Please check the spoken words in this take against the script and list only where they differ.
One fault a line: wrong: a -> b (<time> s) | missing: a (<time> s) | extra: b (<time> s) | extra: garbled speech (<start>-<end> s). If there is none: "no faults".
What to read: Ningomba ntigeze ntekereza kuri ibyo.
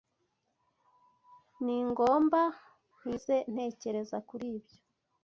no faults